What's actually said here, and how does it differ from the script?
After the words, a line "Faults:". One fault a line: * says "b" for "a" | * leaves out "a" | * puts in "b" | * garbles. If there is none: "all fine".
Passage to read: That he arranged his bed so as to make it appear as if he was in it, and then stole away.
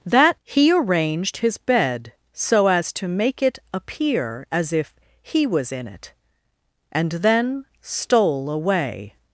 That he arranged his bed so as to make it appear as if he was in it, and then stole away.
Faults:
all fine